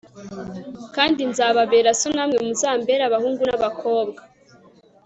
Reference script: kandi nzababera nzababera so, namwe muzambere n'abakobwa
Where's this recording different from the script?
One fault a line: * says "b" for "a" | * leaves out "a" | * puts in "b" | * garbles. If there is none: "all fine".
* leaves out "nzababera"
* puts in "abahungu"